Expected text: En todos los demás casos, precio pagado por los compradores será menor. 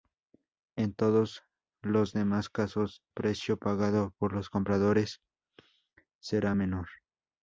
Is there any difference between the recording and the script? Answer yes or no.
no